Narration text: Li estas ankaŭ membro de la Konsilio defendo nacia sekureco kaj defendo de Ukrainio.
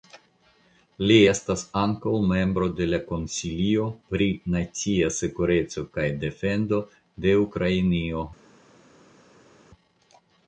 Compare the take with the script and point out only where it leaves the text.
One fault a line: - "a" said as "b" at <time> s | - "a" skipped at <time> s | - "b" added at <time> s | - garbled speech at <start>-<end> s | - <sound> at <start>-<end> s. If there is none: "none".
- "defendo" said as "pri" at 4.1 s